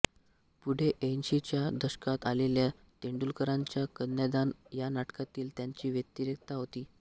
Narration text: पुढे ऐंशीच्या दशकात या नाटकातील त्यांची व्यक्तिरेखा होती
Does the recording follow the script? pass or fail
fail